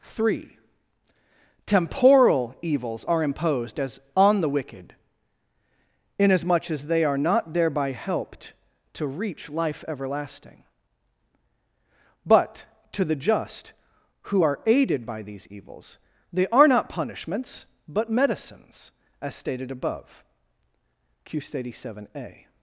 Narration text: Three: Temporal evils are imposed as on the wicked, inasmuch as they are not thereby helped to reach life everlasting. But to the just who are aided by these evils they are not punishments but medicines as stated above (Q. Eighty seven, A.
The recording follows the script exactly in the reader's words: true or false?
true